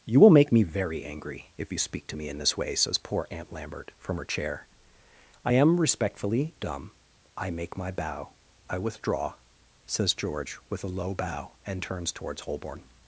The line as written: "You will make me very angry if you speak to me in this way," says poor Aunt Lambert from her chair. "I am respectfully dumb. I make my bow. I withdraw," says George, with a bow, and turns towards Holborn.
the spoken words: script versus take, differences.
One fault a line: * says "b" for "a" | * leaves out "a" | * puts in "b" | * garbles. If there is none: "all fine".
* puts in "low"